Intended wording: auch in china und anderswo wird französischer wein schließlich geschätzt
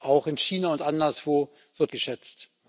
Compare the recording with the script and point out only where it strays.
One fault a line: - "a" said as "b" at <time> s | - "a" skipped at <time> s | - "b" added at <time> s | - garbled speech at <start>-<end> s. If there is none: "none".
- "französischer wein schließlich" skipped at 1.9 s